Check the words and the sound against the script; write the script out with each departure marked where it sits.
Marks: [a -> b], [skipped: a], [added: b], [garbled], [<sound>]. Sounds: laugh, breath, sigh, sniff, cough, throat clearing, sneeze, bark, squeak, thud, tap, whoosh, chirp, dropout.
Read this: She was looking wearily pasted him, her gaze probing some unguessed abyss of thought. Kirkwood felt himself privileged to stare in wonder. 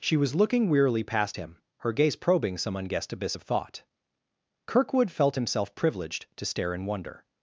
She was looking wearily [pasted -> past] him, her gaze probing some unguessed abyss of thought. Kirkwood felt himself privileged to stare in wonder.